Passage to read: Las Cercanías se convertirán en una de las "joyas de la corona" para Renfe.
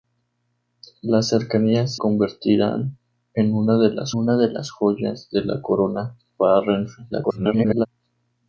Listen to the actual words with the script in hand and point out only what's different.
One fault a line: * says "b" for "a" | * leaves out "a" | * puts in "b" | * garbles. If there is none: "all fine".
* leaves out "se"
* puts in "una de las"
* garbles